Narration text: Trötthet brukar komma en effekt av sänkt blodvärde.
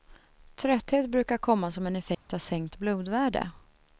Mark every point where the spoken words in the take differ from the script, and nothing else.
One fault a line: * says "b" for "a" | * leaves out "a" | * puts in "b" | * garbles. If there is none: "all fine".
* puts in "som"